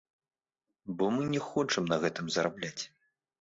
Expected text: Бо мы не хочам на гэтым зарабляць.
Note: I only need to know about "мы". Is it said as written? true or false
true